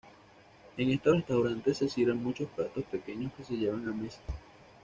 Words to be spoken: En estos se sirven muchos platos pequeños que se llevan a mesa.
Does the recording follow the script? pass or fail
fail